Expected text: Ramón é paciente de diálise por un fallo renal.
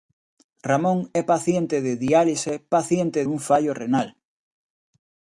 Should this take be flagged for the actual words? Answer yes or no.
yes